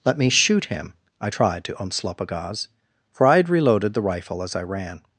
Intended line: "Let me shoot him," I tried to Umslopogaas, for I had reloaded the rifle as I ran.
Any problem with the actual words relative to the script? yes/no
no